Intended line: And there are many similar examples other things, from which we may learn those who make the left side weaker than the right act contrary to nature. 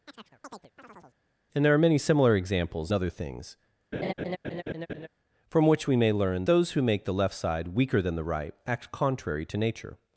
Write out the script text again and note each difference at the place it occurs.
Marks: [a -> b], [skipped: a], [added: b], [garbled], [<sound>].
[chirp] And there are many similar examples other things, [laugh] from which we may learn those who make the left side weaker than the right act contrary to nature.